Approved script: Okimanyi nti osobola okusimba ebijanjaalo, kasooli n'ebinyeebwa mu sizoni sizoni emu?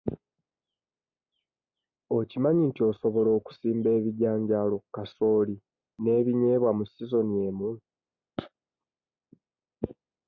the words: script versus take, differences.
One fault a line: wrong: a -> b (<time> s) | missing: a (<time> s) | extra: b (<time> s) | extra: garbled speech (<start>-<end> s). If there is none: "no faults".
missing: sizoni (7.3 s)